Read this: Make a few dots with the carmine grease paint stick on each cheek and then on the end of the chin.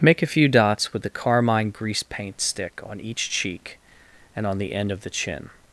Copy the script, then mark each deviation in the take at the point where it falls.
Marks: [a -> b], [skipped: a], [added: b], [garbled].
Make a few dots with the carmine grease paint stick on each cheek and [skipped: then] on the end of the chin.